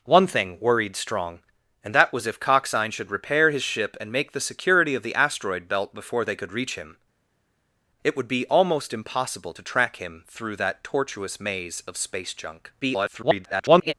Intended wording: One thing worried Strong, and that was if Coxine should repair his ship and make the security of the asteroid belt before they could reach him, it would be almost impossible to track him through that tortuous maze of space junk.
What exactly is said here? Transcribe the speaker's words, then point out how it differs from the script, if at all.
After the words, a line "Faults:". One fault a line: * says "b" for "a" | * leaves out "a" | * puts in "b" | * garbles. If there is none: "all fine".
One thing worried Strong, and that was if Coxine should repair his ship and make the security of the asteroid belt before they could reach him, it would be almost impossible to track him through that tortuous maze of space junk. [garbled]
Faults:
* garbles